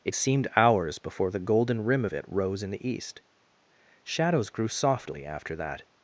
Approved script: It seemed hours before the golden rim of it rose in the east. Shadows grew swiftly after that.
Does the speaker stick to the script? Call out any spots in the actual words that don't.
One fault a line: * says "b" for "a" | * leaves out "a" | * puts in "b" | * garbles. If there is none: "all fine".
* says "softly" for "swiftly"